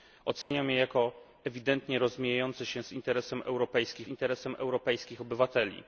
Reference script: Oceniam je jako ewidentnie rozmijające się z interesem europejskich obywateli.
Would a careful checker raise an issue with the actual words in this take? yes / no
yes